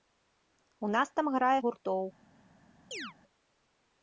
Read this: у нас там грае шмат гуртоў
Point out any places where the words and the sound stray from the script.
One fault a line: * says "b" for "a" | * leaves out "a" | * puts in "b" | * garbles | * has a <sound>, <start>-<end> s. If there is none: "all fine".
* leaves out "шмат"
* has a chirp, 2.9-3.1 s